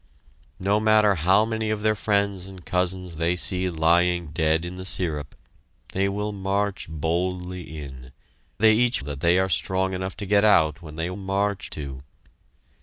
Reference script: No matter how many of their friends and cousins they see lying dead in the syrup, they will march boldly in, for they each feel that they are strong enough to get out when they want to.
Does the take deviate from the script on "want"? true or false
true